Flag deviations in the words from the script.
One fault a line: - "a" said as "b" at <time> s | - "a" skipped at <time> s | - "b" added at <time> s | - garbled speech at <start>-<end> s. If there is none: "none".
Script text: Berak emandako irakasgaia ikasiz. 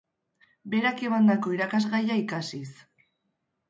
none